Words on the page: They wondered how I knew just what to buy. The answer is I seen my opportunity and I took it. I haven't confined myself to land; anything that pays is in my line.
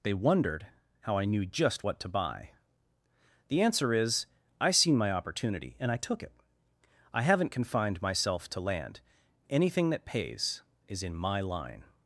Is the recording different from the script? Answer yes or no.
no